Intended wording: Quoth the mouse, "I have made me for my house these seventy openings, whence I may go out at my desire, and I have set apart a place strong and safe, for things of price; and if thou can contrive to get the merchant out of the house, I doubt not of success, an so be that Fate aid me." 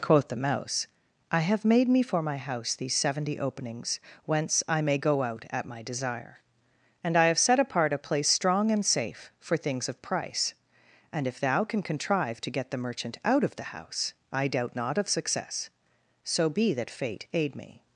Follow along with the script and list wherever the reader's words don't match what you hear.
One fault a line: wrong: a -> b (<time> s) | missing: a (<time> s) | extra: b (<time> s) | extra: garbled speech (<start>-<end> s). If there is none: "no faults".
missing: an (15.7 s)